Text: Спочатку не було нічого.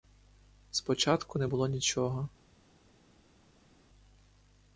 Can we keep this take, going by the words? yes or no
yes